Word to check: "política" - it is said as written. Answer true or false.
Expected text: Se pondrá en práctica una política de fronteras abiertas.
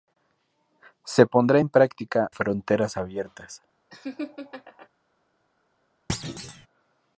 false